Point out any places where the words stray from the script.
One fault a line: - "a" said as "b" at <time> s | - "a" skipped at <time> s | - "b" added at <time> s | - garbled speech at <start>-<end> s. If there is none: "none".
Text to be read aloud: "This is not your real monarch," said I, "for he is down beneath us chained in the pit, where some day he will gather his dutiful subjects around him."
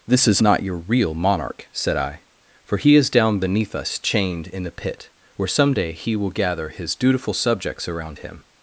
none